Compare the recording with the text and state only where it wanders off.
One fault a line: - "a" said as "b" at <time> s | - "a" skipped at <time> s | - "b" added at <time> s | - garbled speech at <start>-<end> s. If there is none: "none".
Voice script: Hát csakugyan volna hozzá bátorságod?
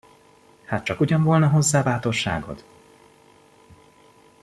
none